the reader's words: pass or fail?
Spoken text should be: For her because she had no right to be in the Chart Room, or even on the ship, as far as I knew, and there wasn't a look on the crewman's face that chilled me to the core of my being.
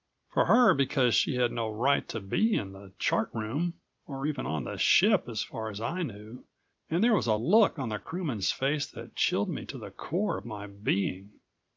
fail